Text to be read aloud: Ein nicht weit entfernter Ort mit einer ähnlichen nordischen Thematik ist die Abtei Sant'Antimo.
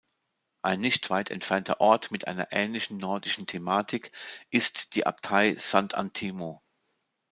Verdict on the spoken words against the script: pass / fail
pass